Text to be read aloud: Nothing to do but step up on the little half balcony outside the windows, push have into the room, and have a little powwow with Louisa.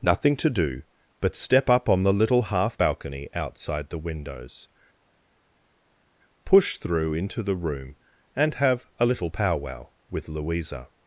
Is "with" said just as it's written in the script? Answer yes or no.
yes